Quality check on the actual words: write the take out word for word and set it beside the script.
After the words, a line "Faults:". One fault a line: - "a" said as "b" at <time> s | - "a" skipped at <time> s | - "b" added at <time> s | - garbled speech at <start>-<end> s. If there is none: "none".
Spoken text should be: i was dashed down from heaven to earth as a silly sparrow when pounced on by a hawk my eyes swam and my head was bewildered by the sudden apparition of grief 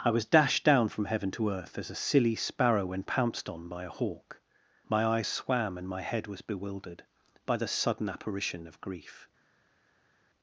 i was dashed down from heaven to earth as a silly sparrow when pounced on by a hawk my eyes swam and my head was bewildered by the sudden apparition of grief
Faults:
none